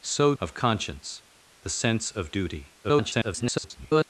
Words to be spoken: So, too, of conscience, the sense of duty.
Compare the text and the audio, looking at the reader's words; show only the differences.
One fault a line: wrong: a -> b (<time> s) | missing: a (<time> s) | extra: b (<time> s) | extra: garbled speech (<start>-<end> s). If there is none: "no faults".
missing: too (0.3 s)
extra: garbled speech (2.8-4.0 s)